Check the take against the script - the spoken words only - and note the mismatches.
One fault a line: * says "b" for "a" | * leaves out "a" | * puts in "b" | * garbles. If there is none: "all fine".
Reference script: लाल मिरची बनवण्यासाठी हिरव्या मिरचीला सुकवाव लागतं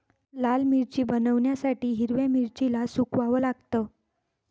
all fine